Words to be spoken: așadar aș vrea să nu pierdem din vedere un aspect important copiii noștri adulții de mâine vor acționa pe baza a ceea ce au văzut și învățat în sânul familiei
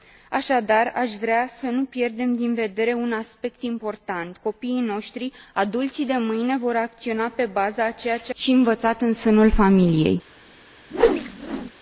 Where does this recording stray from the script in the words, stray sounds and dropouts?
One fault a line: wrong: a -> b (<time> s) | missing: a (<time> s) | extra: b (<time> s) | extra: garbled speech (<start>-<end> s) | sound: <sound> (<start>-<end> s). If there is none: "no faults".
missing: au văzut (8.3 s)
sound: whoosh (10.9-11.7 s)